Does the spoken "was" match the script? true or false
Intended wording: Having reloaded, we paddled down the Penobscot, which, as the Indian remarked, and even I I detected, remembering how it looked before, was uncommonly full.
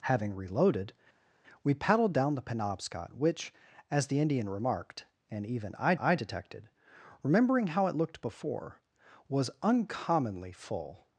true